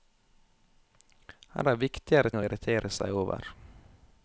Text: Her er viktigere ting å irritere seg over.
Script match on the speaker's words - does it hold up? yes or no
no